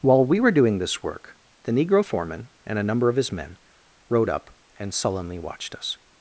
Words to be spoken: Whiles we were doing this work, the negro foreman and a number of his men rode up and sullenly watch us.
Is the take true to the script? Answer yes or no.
no